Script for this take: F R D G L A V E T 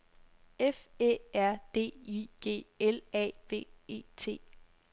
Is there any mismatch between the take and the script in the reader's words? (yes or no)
yes